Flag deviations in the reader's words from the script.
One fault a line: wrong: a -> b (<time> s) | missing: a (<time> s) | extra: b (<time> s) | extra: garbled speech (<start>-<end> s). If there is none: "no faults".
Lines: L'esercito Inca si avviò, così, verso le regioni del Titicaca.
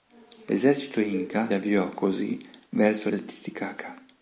missing: si (1.5 s)
missing: le regioni (3.1 s)